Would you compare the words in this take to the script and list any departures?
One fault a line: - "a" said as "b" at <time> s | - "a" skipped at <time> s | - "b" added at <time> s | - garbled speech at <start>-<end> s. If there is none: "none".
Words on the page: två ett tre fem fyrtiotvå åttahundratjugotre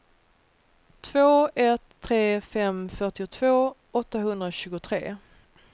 none